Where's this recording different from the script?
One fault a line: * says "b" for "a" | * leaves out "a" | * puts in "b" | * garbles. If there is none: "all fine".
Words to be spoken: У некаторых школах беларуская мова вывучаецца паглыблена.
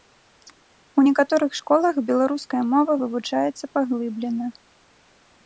all fine